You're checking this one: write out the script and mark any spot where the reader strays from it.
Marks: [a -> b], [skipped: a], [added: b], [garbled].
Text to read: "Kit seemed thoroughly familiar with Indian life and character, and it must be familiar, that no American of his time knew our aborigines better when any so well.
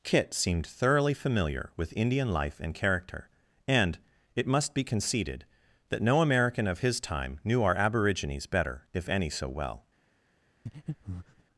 "Kit seemed thoroughly familiar with Indian life and character, and it must be [familiar, -> conceded] that no American of his time knew our aborigines better [when -> if] any so well.